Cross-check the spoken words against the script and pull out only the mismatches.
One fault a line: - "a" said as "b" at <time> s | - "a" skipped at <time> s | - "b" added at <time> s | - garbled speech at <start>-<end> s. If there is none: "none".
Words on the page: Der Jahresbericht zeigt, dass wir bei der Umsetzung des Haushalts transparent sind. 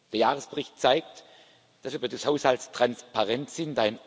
- "der Umsetzung" skipped at 2.1 s